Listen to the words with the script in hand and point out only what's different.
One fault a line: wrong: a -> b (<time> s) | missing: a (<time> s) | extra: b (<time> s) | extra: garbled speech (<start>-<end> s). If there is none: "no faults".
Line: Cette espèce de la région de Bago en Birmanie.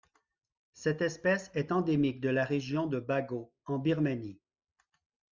extra: est endémique (1.5 s)